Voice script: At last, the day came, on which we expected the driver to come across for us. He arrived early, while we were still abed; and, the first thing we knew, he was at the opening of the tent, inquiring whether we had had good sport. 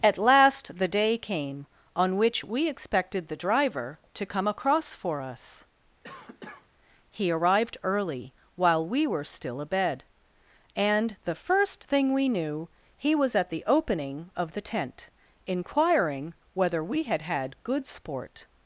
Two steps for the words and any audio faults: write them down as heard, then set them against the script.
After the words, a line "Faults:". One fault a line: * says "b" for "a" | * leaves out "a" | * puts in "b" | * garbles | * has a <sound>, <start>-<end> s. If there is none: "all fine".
At last, the day came, on which we expected the driver to come across for us. He arrived early, while we were still abed; and, the first thing we knew, he was at the opening of the tent, inquiring whether we had had good sport.
Faults:
* has a cough, 6.0-6.7 s